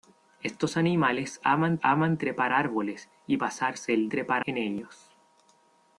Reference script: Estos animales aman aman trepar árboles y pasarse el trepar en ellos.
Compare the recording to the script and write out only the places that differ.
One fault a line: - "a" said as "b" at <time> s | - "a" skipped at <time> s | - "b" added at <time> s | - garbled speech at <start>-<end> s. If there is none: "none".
none